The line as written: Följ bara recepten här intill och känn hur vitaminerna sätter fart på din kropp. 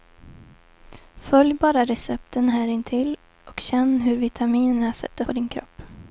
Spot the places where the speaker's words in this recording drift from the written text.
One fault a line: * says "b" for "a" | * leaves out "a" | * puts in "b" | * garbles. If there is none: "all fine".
* leaves out "fart"